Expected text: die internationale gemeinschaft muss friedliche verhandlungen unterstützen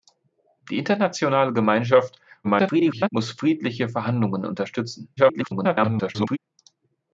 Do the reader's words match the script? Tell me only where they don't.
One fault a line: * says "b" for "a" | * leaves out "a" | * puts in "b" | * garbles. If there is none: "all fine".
* garbles
* garbles